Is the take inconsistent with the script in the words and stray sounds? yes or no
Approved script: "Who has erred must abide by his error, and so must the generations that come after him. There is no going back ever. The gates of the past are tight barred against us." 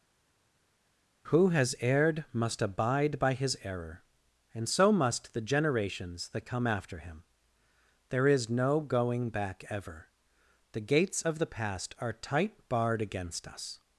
no